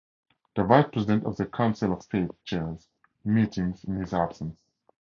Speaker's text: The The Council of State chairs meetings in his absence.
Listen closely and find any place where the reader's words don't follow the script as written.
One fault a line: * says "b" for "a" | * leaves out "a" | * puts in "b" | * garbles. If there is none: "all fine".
* puts in "Vice President of"